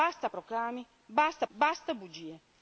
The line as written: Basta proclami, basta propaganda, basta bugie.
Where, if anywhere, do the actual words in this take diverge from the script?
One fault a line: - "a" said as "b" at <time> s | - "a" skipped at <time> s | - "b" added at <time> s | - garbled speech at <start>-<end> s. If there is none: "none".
- "propaganda" skipped at 1.4 s